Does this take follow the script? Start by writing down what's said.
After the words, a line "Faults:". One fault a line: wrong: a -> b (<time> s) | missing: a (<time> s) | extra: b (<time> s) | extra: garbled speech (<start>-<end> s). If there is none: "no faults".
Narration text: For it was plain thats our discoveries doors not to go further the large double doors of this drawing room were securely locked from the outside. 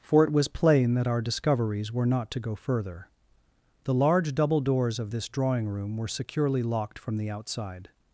For it was plain that our discoveries were not to go further the large double doors of this drawing room were securely locked from the outside.
Faults:
wrong: thats -> that (0.9 s)
wrong: doors -> were (1.9 s)